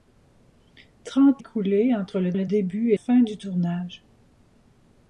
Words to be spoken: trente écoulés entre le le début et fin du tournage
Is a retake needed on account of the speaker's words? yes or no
no